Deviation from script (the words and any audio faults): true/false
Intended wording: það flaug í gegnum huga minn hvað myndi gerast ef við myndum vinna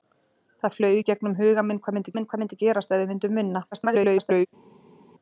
true